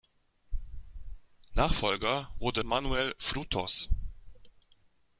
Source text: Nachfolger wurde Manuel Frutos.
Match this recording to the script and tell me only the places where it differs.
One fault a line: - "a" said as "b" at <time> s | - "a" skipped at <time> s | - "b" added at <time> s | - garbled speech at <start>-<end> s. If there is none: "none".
none